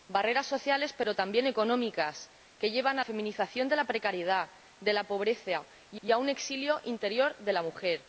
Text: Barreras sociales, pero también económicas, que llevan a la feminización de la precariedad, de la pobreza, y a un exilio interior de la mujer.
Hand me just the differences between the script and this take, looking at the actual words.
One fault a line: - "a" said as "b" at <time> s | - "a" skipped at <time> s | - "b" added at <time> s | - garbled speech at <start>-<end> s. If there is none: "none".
- "la" skipped at 3.0 s
- "y" added at 6.0 s